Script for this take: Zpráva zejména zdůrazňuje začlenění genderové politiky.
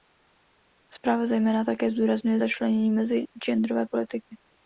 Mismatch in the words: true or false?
true